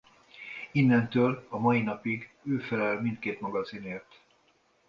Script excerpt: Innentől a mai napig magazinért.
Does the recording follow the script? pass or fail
fail